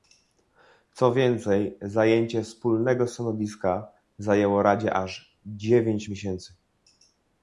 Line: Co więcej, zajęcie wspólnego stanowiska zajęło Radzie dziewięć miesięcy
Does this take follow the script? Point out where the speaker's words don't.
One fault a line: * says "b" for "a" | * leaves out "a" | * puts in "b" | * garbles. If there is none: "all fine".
* puts in "aż"